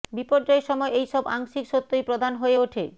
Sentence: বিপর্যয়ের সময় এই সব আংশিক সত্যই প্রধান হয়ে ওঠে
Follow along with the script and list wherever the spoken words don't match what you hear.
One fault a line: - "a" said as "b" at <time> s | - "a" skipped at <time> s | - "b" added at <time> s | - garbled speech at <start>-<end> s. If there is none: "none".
none